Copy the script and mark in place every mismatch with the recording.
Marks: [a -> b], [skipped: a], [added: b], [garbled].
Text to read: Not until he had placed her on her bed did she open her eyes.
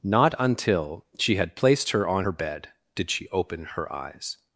Not until [he -> she] had placed her on her bed did she open her eyes.